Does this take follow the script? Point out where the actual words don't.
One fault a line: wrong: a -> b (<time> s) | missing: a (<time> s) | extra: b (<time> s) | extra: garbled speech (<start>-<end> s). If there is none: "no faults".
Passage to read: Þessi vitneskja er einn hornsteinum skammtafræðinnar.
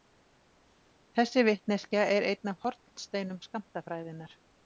extra: af (2.5 s)